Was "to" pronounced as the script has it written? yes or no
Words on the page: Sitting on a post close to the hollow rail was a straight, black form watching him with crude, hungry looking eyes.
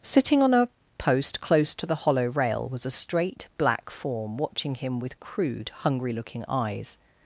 yes